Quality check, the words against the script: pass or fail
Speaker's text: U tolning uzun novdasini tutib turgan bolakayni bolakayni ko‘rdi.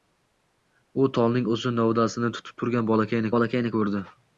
pass